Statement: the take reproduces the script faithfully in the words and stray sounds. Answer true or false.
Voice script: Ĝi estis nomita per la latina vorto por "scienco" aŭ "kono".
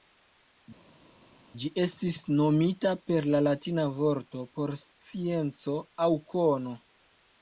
true